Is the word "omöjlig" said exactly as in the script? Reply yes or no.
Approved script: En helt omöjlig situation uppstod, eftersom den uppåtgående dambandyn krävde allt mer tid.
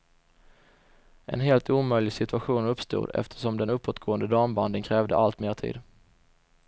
yes